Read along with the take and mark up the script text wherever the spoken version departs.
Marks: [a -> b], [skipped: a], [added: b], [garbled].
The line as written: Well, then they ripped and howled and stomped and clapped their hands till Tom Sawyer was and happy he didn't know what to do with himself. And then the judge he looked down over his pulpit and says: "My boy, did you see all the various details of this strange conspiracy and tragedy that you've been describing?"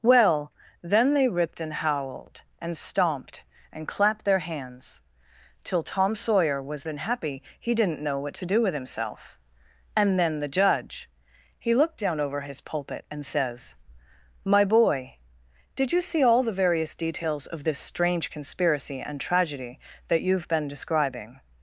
Well, then they ripped and howled and stomped and clapped their hands till Tom Sawyer was and happy he didn't know what to do with himself. And then the judge he looked down over his pulpit and says: "My boy, did you see all the various details of this strange conspiracy and tragedy that you've been describing?"